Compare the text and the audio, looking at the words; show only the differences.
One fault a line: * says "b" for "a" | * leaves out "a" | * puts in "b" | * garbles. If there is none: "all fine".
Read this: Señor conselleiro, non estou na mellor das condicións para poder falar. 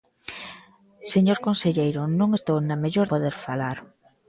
* leaves out "das condicións para"